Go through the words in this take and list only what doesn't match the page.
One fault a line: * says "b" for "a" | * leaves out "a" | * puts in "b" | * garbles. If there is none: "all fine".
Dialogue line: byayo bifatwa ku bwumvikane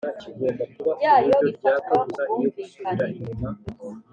all fine